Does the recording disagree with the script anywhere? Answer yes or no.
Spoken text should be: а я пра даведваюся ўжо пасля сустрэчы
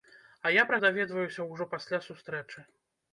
no